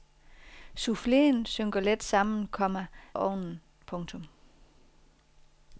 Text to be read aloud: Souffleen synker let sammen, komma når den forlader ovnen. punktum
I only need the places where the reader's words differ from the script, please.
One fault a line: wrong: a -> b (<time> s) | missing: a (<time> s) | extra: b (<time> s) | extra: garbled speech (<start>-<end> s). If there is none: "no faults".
missing: når den forlader (2.9 s)